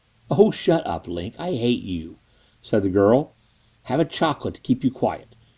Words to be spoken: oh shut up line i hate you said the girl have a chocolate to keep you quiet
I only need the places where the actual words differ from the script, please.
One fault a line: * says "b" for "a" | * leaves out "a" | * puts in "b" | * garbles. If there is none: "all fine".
all fine